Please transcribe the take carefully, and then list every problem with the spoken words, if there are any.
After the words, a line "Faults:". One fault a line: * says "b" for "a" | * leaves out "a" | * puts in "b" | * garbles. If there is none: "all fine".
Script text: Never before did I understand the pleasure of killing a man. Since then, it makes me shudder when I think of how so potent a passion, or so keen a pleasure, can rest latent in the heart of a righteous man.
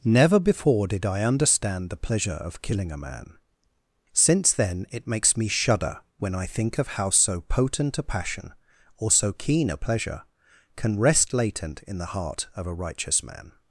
Never before did I understand the pleasure of killing a man. Since then, it makes me shudder when I think of how so potent a passion, or so keen a pleasure, can rest latent in the heart of a righteous man.
Faults:
all fine